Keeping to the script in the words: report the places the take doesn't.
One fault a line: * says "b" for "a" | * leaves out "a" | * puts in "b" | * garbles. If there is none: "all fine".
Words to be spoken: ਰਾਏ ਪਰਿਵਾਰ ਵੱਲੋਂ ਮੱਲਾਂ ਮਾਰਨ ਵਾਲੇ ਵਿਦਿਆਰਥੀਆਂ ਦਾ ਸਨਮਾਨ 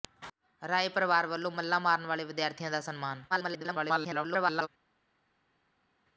* garbles